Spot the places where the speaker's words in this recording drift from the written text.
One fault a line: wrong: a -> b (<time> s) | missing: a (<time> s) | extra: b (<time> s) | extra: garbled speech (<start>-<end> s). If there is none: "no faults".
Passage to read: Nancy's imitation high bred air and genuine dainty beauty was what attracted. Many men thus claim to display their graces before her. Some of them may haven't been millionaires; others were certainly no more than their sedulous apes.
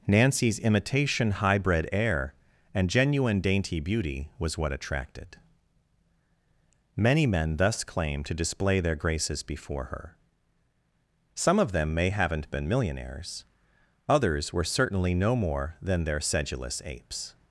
no faults